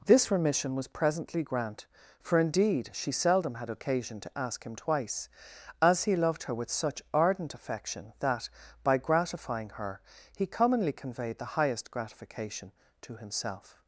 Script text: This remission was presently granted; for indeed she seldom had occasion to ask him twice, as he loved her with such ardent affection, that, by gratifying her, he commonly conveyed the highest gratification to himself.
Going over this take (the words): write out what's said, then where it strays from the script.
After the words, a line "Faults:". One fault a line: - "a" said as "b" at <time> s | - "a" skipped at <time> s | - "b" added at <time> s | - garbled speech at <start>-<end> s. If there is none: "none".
This remission was presently grant; for indeed she seldom had occasion to ask him twice, as he loved her with such ardent affection, that, by gratifying her, he commonly conveyed the highest gratification to himself.
Faults:
- "granted" said as "grant" at 1.4 s